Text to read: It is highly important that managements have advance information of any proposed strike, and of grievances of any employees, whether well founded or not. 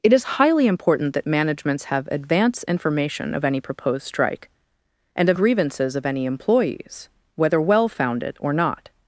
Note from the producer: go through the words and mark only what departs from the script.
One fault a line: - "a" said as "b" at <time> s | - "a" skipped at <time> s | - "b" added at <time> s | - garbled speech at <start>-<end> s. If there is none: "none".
none